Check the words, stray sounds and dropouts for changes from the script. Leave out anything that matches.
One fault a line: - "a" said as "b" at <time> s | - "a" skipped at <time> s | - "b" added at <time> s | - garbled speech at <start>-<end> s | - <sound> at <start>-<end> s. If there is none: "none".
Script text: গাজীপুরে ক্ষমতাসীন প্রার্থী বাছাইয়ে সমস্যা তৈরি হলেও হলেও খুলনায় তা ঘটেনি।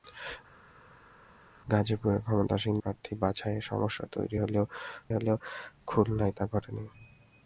none